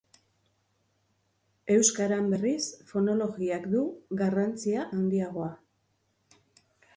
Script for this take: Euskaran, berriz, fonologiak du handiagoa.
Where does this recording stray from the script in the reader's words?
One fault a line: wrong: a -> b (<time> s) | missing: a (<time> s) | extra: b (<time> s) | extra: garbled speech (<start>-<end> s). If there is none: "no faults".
extra: garrantzia (4.2 s)